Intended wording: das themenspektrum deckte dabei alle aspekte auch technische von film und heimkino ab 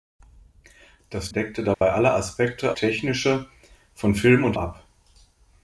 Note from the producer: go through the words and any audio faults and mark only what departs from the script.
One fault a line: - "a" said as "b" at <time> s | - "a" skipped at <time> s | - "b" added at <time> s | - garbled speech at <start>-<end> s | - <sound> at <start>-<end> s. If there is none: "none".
- "themenspektrum" skipped at 1.3 s
- dropout at 1.7-1.8 s
- "auch" skipped at 2.8 s
- "heimkino" skipped at 4.6 s